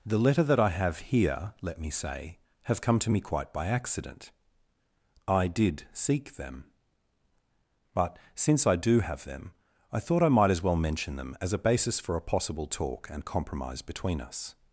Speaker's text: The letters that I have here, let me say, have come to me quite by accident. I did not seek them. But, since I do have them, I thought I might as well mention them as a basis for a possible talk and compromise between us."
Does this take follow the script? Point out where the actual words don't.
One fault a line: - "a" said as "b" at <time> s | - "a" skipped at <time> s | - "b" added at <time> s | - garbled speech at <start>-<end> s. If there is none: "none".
- "letters" said as "letter" at 0.2 s
- "not" skipped at 5.8 s